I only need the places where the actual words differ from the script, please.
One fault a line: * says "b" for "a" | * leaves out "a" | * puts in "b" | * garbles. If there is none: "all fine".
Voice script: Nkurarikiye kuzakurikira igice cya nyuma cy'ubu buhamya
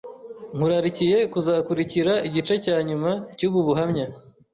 all fine